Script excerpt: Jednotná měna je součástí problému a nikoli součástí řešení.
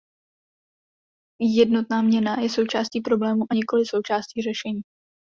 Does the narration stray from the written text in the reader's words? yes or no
no